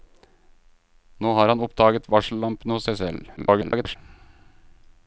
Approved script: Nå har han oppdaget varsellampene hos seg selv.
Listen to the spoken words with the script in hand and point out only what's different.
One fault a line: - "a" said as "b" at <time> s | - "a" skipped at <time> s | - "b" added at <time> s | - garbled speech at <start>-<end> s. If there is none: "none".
- garbled speech at 3.4-4.0 s